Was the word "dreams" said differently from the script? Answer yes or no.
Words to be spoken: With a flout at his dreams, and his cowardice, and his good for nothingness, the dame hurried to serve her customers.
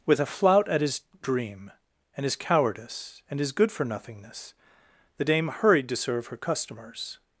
yes